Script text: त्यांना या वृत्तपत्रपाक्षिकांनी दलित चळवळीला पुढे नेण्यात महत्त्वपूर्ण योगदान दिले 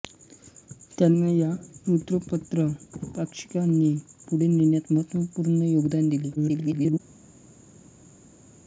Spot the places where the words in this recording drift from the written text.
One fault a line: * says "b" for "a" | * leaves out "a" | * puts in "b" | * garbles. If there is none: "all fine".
* leaves out "दलित चळवळीला"
* garbles